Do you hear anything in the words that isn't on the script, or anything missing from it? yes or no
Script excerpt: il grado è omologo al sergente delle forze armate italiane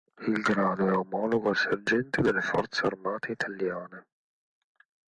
no